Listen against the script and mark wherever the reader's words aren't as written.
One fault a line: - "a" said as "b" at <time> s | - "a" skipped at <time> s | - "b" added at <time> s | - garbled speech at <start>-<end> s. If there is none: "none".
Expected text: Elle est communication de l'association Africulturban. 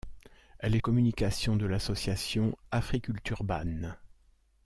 none